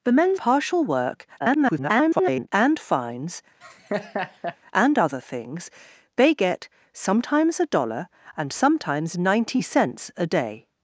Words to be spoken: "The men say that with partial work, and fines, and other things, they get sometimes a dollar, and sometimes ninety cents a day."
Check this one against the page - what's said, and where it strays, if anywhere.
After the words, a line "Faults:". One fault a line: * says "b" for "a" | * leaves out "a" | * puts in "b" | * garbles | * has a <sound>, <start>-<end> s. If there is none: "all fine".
"The men partial work, [garbled] and fines, and other things, they get sometimes a dollar, and sometimes ninety cents a day."
Faults:
* leaves out "say that with"
* garbles
* has a laugh, 3.6-4.6 s